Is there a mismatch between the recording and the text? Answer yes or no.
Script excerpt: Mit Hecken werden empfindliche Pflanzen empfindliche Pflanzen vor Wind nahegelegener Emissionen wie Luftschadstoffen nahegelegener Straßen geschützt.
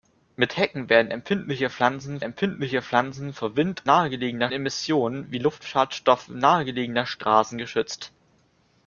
no